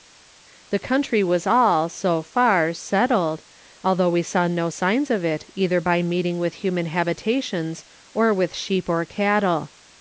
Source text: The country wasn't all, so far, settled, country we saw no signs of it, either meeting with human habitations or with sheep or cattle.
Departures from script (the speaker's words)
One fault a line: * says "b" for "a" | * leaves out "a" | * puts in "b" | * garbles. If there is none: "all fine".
* says "was" for "wasn't"
* says "although" for "country"
* puts in "by"